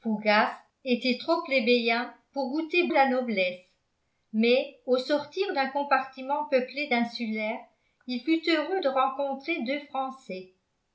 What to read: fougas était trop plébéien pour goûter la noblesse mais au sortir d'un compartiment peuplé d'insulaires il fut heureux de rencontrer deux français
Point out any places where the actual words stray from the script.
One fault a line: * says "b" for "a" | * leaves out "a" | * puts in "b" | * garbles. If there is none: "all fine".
all fine